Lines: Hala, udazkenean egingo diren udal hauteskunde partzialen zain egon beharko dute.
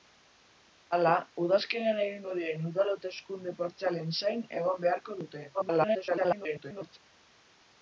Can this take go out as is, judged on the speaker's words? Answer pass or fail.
fail